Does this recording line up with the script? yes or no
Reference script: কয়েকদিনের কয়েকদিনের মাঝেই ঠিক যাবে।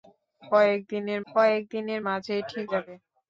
yes